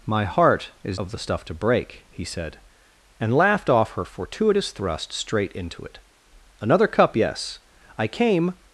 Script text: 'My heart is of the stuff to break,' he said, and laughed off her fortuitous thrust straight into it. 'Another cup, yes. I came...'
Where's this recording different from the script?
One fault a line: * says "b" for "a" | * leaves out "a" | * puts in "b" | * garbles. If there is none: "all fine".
all fine